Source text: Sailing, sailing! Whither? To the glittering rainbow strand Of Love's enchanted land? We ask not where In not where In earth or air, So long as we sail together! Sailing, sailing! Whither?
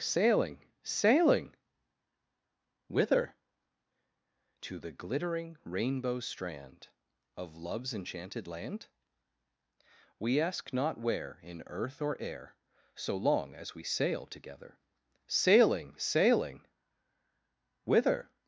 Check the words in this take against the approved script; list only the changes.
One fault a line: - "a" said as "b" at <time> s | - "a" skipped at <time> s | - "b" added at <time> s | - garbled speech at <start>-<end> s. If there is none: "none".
- "not where In" skipped at 11.6 s